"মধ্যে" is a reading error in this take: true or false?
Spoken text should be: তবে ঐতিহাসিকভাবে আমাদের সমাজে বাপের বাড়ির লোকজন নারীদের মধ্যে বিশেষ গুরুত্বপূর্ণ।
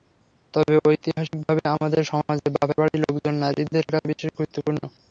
true